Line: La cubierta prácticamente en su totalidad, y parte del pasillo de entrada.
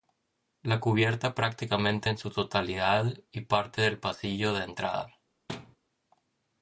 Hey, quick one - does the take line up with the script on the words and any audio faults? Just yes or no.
no